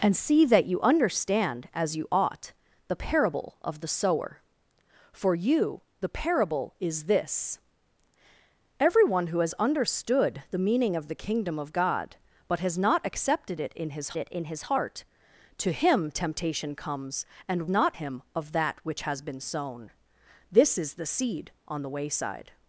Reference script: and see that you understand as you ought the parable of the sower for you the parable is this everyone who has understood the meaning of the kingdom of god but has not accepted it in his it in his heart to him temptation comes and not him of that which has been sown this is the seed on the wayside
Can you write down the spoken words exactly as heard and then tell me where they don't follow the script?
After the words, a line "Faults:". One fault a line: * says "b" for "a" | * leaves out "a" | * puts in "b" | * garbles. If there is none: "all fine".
and see that you understand as you ought the parable of the sower for you the parable is this everyone who has understood the meaning of the kingdom of god but has not accepted it in his it in his heart to him temptation comes and not him of that which has been sown this is the seed on the wayside
Faults:
all fine